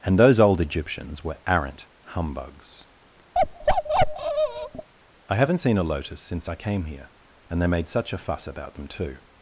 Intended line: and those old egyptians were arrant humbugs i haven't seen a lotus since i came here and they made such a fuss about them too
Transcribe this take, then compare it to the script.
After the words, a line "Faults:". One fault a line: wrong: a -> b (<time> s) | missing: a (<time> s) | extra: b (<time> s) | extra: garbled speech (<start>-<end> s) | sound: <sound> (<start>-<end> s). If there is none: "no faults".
and those old egyptians were arrant humbugs i haven't seen a lotus since i came here and they made such a fuss about them too
Faults:
sound: bark (3.3-4.9 s)